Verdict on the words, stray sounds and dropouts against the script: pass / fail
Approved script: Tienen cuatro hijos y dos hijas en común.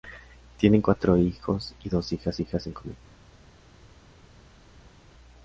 fail